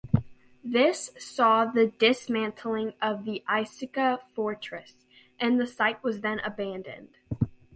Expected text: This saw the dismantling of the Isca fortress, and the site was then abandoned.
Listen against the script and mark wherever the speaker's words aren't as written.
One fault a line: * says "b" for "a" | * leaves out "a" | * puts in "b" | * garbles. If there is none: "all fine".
all fine